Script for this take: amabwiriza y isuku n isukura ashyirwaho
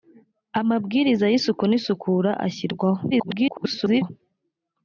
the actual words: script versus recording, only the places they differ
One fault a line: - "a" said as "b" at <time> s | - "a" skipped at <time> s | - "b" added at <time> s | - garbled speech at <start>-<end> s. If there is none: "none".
- garbled speech at 3.1-4.1 s